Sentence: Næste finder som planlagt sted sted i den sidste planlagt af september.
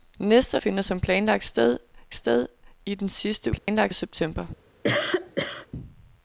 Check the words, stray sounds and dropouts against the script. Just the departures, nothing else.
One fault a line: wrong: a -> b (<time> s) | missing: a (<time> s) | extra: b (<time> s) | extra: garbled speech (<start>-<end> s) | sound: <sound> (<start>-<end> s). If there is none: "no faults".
sound: dropout (3.6-3.7 s)
sound: cough (4.8-5.7 s)